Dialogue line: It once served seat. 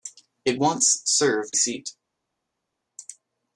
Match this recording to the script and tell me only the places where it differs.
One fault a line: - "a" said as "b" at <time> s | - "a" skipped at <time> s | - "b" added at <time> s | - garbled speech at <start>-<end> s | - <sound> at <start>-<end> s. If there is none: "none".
none